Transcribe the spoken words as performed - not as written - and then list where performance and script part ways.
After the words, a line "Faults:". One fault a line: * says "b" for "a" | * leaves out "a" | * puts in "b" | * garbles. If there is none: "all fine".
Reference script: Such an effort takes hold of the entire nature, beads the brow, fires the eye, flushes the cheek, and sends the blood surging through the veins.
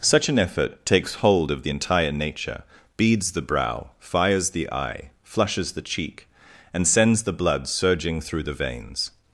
Such an effort takes hold of the entire nature, beads the brow, fires the eye, flushes the cheek, and sends the blood surging through the veins.
Faults:
all fine